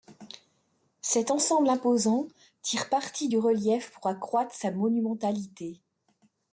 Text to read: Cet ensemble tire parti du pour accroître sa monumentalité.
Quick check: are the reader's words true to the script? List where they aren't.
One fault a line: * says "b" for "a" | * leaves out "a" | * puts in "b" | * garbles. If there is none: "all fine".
* puts in "imposant"
* puts in "relief"